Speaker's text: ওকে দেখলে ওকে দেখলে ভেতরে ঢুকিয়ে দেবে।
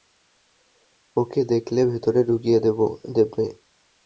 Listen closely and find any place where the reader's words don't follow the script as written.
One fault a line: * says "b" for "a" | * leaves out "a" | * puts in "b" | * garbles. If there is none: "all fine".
* leaves out "ওকে দেখলে"